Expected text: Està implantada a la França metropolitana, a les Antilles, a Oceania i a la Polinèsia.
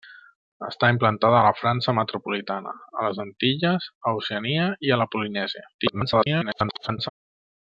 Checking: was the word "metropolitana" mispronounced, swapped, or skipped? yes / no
no